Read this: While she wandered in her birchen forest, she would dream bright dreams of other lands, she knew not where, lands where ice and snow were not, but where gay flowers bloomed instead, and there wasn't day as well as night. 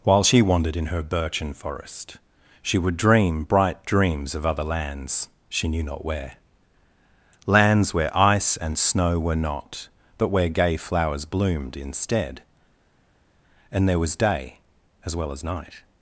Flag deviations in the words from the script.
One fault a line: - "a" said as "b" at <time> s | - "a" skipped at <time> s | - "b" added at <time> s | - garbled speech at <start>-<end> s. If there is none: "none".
- "wasn't" said as "was" at 14.0 s